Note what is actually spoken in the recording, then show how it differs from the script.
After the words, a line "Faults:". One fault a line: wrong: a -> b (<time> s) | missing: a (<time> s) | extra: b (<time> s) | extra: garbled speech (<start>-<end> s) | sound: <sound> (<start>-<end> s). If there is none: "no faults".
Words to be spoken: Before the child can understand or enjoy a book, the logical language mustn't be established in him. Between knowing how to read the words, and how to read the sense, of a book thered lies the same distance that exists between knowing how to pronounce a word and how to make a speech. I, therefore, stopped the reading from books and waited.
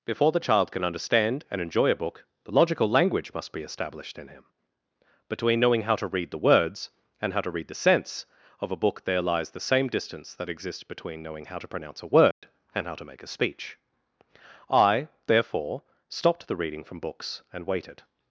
Before the child can understand and enjoy a book, the logical language must be established in him. Between knowing how to read the words, and how to read the sense, of a book there lies the same distance that exists between knowing how to pronounce a word and how to make a speech. I, therefore, stopped the reading from books and waited.
Faults:
wrong: or -> and (1.5 s)
wrong: mustn't -> must (3.4 s)
wrong: thered -> there (9.1 s)
sound: dropout (12.3-12.4 s)